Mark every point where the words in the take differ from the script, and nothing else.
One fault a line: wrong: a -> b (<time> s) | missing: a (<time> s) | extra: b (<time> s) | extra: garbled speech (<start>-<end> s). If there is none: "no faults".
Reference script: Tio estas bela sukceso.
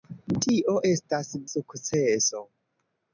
missing: bela (1.3 s)